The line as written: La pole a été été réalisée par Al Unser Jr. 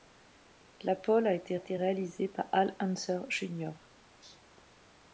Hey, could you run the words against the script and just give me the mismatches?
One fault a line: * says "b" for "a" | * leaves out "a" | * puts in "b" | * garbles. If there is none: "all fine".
all fine